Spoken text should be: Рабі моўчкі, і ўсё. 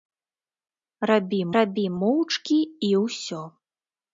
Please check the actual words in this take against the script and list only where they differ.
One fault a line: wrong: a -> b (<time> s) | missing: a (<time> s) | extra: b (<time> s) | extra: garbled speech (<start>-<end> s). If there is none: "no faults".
extra: рабі (1.6 s)